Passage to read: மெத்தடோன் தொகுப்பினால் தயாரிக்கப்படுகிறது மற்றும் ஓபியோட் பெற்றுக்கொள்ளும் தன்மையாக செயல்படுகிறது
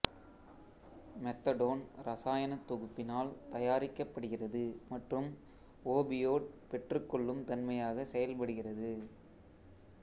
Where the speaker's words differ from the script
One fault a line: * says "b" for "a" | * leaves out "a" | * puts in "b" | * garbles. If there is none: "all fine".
* puts in "இரசாயனத்"